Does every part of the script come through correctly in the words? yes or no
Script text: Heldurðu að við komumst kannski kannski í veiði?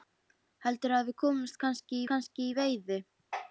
yes